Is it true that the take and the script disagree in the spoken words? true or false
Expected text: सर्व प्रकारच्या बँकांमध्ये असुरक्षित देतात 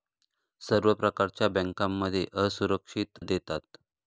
false